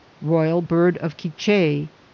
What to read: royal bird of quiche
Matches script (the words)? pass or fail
pass